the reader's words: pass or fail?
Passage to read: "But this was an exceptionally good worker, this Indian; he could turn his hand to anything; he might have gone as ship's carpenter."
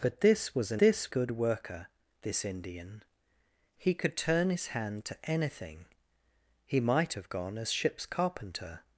fail